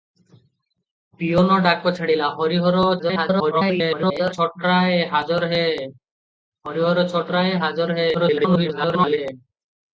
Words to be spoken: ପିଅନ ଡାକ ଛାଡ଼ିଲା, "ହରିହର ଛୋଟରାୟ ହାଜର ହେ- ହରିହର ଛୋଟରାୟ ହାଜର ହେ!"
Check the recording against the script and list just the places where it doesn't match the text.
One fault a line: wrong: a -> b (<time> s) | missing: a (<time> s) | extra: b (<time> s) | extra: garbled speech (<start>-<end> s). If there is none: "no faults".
extra: garbled speech (3.0-4.3 s)
extra: garbled speech (8.1-9.2 s)